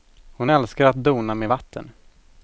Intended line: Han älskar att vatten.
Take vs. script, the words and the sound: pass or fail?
fail